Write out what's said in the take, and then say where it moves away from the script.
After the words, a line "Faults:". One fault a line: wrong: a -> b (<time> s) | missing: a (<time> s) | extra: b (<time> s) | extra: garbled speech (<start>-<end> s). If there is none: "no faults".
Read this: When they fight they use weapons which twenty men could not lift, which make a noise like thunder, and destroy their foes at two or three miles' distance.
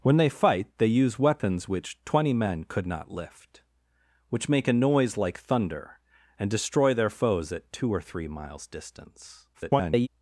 When they fight they use weapons which twenty men could not lift, which make a noise like thunder, and destroy their foes at two or three miles' distance. [garbled]
Faults:
extra: garbled speech (9.5-10.1 s)